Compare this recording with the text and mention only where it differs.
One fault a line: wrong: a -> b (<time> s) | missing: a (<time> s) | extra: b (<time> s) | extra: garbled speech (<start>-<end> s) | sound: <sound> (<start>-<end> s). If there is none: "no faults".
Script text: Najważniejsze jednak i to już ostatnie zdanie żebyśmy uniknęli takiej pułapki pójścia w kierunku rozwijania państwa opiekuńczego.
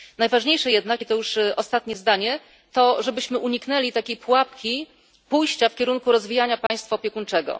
extra: to (2.7 s)
sound: dropout (6.7-6.7 s)